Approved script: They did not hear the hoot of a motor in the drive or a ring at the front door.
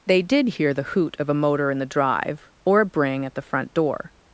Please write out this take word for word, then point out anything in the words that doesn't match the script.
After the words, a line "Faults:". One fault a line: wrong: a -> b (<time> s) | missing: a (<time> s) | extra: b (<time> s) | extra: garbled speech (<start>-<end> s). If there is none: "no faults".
They did hear the hoot of a motor in the drive or a bring at the front door.
Faults:
missing: not (0.5 s)
wrong: ring -> bring (2.9 s)